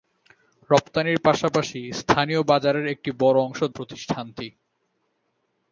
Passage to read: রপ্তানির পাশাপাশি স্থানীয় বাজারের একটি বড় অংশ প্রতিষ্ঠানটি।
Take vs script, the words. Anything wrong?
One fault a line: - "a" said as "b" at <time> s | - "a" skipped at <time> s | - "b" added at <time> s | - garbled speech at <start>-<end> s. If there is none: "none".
none